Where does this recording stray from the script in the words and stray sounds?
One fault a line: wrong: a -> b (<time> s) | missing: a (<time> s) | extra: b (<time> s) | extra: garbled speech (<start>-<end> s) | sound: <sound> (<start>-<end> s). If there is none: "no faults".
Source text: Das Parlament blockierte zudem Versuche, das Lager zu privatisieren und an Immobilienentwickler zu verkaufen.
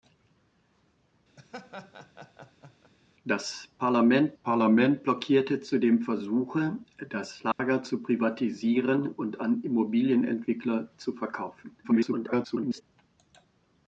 sound: laugh (1.4-2.9 s)
extra: Parlament (4.4 s)
sound: dropout (7.5-7.6 s)
extra: garbled speech (11.8-12.8 s)